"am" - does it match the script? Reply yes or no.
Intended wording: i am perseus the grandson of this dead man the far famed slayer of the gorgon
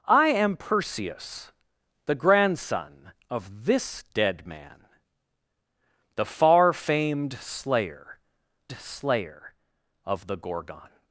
yes